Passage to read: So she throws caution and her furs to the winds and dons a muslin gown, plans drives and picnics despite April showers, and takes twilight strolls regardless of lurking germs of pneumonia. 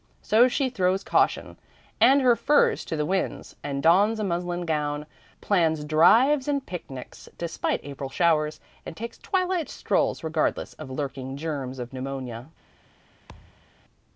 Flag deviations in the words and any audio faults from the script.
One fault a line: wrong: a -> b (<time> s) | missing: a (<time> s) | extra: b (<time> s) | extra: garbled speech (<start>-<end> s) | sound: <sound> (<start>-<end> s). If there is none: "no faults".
sound: thud (13.3-13.7 s)